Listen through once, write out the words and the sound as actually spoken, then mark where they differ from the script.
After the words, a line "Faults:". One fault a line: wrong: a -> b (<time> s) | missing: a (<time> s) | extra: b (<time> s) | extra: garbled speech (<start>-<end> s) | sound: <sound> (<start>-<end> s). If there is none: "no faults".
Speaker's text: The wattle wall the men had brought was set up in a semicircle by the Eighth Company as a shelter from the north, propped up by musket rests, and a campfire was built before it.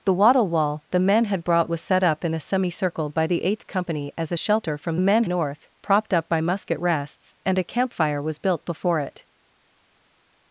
The wattle wall the men had brought was set up in a semicircle by the Eighth Company as a shelter from men north, propped up by musket rests, and a campfire was built before it.
Faults:
wrong: the -> men (5.0 s)